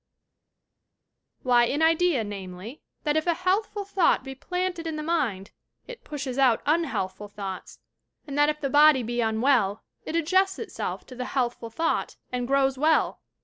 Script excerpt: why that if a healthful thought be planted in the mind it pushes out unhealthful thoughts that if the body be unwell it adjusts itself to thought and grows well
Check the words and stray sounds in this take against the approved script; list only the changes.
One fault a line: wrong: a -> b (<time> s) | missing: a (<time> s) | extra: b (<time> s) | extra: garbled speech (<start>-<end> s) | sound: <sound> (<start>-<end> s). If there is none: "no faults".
extra: an idea namely (1.7 s)
extra: and (8.3 s)
extra: the healthful (11.1 s)